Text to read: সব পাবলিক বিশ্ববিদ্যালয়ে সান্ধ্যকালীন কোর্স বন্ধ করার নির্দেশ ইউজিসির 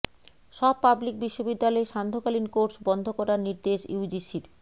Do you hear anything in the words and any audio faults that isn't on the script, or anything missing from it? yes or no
no